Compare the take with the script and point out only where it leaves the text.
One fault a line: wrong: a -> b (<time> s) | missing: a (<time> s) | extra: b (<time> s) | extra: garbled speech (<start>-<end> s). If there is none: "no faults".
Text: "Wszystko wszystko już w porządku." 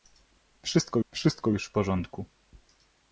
no faults